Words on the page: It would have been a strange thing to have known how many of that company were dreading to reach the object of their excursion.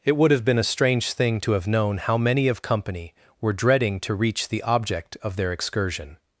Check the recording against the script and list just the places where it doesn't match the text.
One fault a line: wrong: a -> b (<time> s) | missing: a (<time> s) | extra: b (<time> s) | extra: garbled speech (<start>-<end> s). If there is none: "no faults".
missing: that (2.6 s)